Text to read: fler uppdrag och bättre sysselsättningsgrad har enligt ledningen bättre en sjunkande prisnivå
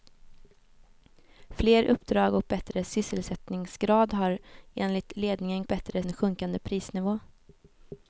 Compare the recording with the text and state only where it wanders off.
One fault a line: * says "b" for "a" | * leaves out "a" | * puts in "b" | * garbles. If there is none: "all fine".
all fine